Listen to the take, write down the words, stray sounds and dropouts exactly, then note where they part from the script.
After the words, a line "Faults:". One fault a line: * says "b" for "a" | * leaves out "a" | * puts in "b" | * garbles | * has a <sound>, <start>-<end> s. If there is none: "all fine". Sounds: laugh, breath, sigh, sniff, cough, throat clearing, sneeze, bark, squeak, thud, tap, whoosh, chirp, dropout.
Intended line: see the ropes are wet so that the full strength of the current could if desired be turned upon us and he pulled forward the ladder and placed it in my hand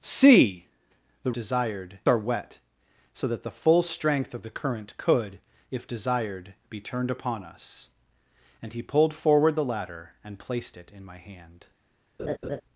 see the desired are wet so that the full strength of the current could if desired be turned upon us and he pulled forward the ladder and placed it in my hand
Faults:
* says "desired" for "ropes"
* has a laugh, 12.2-12.6 s